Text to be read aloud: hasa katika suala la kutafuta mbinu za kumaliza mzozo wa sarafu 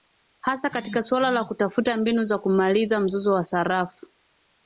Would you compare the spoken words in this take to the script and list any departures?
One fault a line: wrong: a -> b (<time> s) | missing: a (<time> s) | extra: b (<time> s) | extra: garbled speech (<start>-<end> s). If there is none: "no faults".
no faults